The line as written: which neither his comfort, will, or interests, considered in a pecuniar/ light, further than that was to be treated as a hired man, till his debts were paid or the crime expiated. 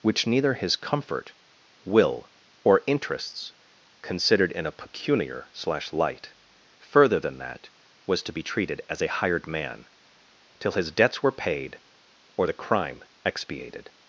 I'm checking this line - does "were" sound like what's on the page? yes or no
yes